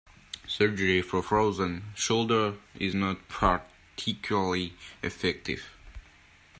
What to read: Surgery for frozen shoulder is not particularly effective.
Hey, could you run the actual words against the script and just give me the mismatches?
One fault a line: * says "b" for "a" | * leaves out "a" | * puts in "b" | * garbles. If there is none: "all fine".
all fine